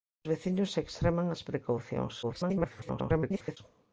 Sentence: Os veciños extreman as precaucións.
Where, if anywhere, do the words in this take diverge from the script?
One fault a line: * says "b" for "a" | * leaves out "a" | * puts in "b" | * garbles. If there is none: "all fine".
* garbles